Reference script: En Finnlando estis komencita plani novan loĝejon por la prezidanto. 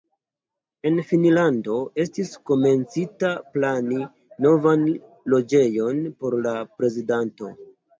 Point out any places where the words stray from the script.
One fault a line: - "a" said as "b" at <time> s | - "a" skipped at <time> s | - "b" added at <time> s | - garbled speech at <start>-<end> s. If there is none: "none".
none